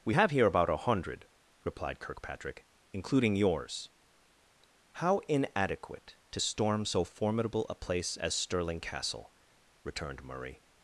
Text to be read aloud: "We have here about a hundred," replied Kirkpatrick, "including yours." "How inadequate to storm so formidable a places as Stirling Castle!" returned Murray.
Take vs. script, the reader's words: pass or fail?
fail